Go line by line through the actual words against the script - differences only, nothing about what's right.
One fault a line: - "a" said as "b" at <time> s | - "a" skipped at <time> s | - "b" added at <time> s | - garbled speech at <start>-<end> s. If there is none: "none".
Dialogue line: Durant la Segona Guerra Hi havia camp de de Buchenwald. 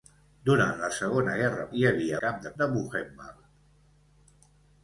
none